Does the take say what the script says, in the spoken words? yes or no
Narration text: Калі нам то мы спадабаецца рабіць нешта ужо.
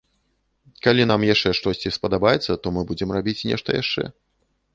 no